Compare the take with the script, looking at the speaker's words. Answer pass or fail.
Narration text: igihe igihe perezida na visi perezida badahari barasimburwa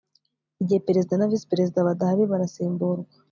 fail